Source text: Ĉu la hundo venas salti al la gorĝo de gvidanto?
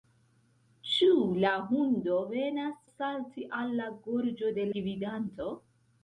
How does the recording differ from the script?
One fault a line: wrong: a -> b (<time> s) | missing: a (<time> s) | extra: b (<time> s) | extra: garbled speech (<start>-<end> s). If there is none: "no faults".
no faults